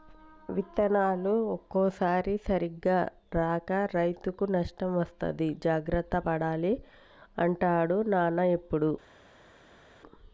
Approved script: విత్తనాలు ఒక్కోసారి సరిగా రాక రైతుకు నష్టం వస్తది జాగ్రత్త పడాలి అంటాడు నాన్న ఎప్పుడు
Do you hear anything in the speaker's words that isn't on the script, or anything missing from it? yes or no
no